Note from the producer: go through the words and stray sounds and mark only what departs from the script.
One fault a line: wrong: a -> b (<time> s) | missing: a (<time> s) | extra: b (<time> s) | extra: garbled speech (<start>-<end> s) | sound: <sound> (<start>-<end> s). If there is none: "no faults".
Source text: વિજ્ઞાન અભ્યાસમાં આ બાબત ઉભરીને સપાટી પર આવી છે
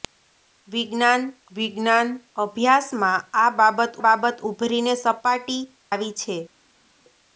extra: વિજ્ઞાન (1.5 s)
extra: બાબત (4.1 s)
missing: પર (5.6 s)